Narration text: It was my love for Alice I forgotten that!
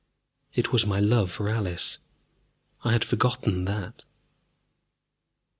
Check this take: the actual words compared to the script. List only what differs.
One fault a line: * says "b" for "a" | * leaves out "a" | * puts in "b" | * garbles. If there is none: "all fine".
* puts in "had"